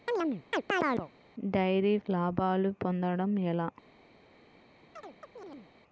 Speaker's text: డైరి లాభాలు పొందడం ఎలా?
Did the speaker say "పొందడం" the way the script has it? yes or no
yes